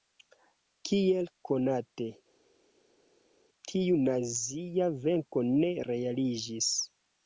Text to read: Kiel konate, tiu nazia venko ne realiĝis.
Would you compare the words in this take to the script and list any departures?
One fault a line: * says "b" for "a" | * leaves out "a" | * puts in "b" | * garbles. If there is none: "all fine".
all fine